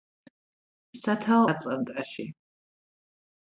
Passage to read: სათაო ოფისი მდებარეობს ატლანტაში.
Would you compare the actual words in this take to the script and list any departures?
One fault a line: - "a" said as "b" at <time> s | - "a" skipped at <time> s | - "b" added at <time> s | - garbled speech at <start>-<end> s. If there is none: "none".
- "ოფისი მდებარეობს" skipped at 1.4 s